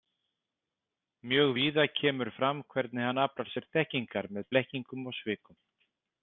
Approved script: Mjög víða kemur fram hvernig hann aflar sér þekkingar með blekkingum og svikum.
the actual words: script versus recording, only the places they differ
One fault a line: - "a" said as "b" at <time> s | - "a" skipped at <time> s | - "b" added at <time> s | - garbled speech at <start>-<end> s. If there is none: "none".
none